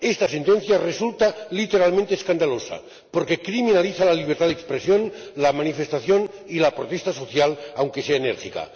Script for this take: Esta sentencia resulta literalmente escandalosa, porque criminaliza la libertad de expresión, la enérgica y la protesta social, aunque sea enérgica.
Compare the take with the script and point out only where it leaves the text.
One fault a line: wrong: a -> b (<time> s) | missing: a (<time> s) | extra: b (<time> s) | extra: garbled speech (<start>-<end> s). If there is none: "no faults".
wrong: enérgica -> manifestación (5.5 s)